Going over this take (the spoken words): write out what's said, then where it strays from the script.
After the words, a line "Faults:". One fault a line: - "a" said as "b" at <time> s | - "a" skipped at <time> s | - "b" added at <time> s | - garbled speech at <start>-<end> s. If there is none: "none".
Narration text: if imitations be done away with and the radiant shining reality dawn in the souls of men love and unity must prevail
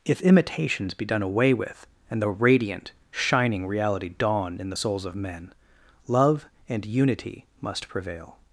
if imitations be done away with and the radiant shining reality dawn in the souls of men love and unity must prevail
Faults:
none